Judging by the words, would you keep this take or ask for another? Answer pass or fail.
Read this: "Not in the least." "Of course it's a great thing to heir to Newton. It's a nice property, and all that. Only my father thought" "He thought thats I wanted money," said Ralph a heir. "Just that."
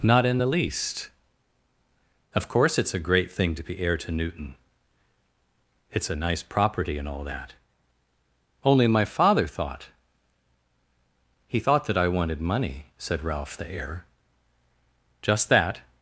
fail